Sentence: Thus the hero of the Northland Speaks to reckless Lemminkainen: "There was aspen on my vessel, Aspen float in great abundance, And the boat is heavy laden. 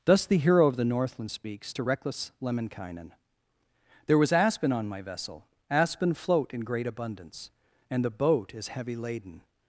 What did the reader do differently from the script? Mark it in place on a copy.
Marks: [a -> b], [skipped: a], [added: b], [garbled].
Thus the hero of the Northland Speaks to reckless Lemminkainen: "There was aspen on my vessel, Aspen float in great abundance, And the boat is heavy laden.